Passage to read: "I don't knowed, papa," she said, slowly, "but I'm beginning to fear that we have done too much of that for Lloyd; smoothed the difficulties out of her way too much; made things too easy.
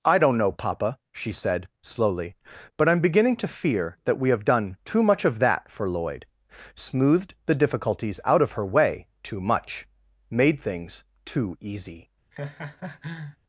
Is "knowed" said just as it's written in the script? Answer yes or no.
no